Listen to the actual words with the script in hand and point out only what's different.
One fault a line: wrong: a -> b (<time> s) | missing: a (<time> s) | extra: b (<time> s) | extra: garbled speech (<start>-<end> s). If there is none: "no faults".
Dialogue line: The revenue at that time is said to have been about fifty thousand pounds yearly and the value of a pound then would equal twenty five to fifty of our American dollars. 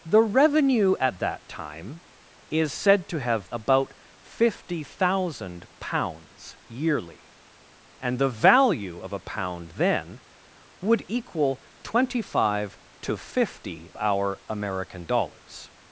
missing: been (3.5 s)
missing: of (13.9 s)